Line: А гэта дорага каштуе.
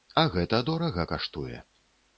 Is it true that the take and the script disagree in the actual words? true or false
false